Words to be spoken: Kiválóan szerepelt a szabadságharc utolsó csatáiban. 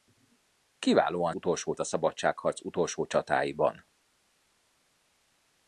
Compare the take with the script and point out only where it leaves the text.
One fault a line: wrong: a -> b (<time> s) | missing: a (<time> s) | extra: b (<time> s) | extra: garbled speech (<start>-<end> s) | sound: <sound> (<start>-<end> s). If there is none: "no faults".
wrong: szerepelt -> utolsó (1.3 s)